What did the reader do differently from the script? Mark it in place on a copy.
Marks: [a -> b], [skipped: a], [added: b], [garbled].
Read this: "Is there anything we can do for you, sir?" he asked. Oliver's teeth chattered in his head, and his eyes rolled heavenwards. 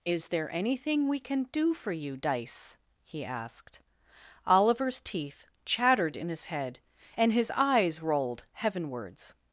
"Is there anything we can do for you, [sir?" -> dice] he asked. Oliver's teeth chattered in his head, and his eyes rolled heavenwards.